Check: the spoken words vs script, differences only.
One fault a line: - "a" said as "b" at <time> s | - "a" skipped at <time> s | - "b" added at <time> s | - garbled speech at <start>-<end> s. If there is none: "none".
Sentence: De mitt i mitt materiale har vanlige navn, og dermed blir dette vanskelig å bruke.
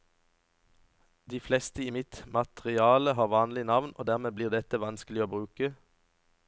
- "mitt" said as "fleste" at 1.4 s